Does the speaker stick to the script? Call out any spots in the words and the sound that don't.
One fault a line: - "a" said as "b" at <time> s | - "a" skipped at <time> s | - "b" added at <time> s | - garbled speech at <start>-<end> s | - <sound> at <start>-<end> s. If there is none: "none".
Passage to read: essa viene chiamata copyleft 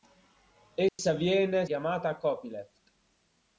- dropout at 0.9-1.0 s